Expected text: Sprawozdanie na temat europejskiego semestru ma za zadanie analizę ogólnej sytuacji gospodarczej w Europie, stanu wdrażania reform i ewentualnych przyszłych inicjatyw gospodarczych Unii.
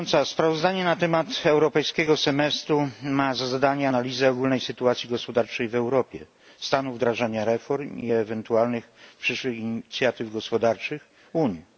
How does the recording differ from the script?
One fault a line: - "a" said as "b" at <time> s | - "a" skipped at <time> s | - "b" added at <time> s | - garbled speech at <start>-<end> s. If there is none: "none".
none